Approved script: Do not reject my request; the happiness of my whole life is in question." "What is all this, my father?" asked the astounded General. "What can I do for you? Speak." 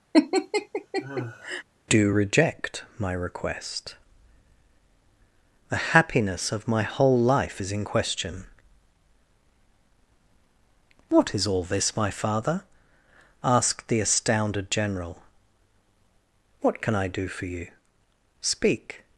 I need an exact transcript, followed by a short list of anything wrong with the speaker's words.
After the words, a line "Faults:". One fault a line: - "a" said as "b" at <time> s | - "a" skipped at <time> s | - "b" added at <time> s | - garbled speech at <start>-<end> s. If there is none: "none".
Do reject my request; the happiness of my whole life is in question." "What is all this, my father?" asked the astounded General. "What can I do for you? Speak."
Faults:
- "not" skipped at 2.1 s